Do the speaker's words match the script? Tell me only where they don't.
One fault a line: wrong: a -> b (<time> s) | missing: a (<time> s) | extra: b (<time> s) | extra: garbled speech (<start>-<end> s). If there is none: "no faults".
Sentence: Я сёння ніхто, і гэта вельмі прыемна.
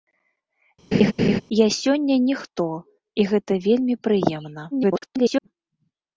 extra: garbled speech (4.7-5.5 s)